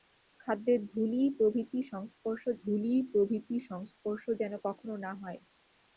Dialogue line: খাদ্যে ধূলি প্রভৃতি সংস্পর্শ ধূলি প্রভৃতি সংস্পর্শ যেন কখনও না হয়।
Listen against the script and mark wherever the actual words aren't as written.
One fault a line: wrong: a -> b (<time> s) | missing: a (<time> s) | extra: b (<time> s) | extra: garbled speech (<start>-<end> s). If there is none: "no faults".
no faults